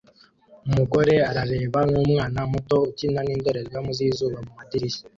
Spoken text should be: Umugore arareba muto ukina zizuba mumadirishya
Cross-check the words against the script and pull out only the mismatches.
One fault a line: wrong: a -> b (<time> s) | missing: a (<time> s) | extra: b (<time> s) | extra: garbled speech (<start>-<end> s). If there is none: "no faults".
extra: nkumwana (1.9 s)
extra: nindorerwamo (3.2 s)